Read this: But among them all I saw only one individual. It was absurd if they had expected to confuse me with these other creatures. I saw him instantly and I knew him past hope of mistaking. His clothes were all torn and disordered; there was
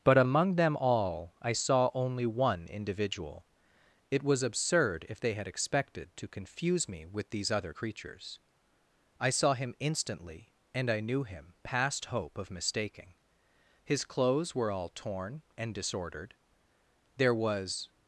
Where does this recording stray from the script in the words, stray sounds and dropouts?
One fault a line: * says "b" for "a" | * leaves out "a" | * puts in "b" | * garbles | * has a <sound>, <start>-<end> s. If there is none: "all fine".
all fine